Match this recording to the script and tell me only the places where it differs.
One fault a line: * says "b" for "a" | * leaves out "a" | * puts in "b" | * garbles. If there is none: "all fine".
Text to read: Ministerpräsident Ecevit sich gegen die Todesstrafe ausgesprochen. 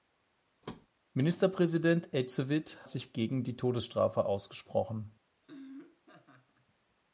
all fine